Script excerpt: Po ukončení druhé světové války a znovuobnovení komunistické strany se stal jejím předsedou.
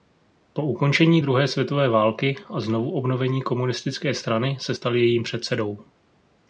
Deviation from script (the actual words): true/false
false